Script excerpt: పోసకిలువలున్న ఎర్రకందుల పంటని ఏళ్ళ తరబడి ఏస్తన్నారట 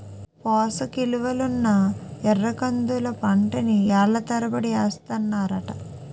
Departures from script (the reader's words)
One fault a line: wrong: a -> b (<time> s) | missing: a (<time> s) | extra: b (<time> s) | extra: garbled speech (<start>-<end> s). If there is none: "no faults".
no faults